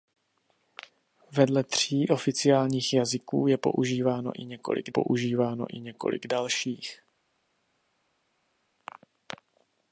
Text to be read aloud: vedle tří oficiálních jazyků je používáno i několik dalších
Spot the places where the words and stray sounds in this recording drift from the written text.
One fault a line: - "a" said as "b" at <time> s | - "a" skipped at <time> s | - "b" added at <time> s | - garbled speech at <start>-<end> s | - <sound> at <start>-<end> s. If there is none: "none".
- "používáno i několik" added at 4.9 s